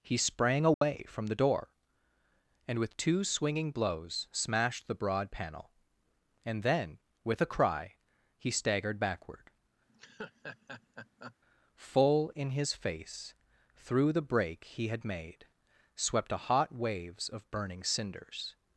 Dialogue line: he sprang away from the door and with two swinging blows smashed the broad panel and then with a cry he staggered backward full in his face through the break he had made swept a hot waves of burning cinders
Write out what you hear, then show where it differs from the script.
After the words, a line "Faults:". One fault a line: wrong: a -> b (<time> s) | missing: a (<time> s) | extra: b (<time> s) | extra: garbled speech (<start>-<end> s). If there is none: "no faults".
he sprang away from the door and with two swinging blows smashed the broad panel and then with a cry he staggered backward full in his face through the break he had made swept a hot waves of burning cinders
Faults:
no faults